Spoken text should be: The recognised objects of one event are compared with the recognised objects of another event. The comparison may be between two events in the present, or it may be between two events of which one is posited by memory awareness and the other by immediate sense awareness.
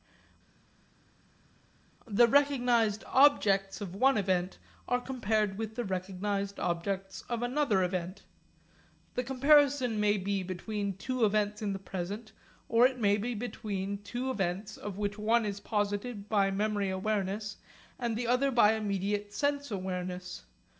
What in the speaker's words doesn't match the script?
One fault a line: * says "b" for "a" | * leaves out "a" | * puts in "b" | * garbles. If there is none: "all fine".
all fine